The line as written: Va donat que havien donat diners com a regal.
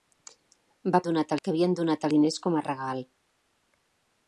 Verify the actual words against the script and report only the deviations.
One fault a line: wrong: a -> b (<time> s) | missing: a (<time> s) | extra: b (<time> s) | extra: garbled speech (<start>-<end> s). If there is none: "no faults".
no faults